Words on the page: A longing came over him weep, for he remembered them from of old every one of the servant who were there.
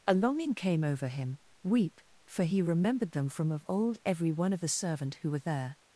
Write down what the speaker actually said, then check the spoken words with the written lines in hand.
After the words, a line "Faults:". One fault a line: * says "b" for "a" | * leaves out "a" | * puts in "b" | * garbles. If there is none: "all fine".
A longing came over him weep, for he remembered them from of old every one of the servant who were there.
Faults:
all fine